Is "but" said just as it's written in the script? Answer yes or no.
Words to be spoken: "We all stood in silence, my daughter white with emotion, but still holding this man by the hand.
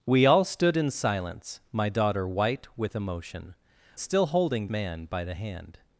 no